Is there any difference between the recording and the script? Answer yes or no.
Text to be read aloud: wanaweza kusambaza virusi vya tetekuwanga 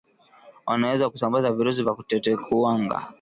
no